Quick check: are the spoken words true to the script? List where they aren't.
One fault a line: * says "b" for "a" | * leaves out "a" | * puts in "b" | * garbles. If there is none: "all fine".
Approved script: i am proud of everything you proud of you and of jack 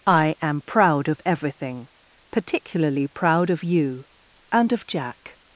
* says "particularly" for "you"